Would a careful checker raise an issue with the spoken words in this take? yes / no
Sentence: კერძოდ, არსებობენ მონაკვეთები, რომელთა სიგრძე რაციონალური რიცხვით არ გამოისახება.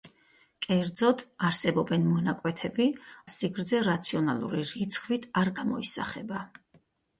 yes